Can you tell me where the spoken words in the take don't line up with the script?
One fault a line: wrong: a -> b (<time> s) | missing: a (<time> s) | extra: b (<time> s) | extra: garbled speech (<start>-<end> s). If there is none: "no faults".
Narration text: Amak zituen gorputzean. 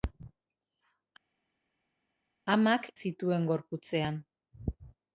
no faults